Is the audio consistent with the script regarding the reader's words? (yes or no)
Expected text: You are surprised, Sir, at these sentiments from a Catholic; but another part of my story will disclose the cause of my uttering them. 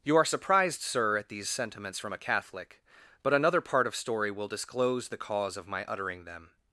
no